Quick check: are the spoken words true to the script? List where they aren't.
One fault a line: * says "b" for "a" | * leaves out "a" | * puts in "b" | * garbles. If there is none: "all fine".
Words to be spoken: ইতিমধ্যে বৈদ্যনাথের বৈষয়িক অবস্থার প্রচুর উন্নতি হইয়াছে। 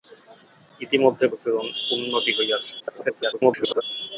* leaves out "বৈদ্যনাথের বৈষয়িক অবস্থার"
* garbles